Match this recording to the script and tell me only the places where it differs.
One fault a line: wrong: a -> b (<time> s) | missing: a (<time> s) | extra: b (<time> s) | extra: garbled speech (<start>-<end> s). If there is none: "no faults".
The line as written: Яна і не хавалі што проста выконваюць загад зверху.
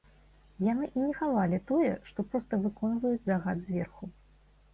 wrong: Яна -> Яны (0.7 s)
extra: тое (1.7 s)